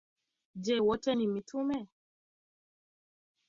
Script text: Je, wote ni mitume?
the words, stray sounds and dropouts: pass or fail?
pass